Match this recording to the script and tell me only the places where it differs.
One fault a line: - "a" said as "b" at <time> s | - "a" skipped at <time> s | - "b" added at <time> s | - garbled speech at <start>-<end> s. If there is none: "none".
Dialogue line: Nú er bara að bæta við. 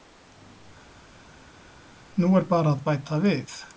none